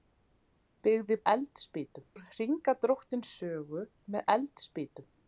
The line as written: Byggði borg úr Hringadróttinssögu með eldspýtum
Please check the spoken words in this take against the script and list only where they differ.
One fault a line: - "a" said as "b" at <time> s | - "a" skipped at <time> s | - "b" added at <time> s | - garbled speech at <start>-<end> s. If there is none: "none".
- "borg" said as "eldspýtum" at 1.3 s